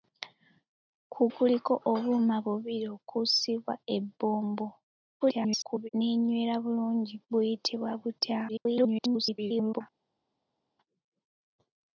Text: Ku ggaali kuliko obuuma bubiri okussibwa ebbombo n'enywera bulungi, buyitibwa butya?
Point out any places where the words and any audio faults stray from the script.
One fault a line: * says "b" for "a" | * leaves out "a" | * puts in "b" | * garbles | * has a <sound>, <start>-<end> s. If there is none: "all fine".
* leaves out "ggaali"
* garbles
* garbles